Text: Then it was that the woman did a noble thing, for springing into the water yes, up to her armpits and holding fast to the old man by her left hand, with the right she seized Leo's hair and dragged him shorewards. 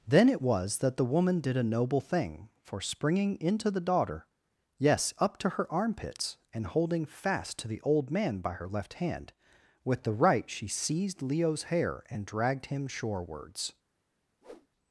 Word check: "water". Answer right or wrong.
wrong